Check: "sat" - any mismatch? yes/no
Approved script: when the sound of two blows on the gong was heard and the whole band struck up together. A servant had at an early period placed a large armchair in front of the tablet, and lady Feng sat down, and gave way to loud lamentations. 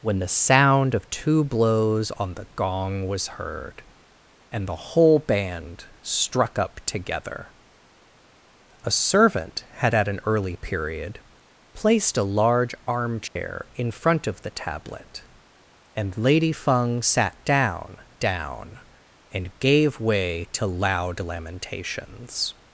no